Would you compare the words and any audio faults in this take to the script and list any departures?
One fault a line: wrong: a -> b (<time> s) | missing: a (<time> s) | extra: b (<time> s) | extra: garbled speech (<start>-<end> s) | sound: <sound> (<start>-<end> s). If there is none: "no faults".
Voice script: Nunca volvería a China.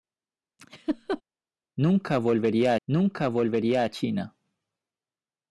sound: laugh (0.6-1.2 s)
extra: nunca volvería (2.9 s)